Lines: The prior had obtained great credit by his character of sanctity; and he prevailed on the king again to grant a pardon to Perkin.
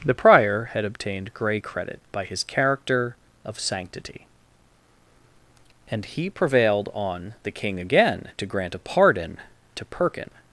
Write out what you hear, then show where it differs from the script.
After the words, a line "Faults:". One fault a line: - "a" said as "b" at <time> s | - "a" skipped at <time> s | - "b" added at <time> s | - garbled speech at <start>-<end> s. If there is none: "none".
The prior had obtained grey credit by his character of sanctity; and he prevailed on the king again to grant a pardon to Perkin.
Faults:
- "great" said as "grey" at 1.3 s